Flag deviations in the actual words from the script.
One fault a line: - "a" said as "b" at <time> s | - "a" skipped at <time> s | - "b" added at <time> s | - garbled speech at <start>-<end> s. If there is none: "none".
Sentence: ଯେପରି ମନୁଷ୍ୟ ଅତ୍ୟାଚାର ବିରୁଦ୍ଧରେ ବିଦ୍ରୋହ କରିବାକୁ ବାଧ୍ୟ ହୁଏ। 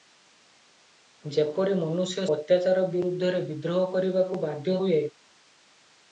none